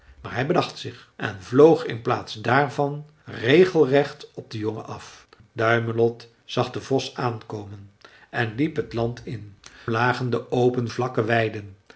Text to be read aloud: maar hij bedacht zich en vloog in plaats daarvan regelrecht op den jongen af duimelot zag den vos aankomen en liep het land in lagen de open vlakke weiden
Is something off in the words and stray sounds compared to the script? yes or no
no